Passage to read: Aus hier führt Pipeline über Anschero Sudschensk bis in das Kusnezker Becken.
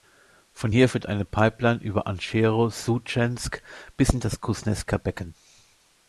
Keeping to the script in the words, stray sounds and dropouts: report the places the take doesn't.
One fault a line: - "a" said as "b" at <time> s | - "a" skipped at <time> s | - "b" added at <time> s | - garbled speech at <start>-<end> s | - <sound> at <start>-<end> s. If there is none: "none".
- "Aus" said as "Von" at 0.5 s
- "eine" added at 1.1 s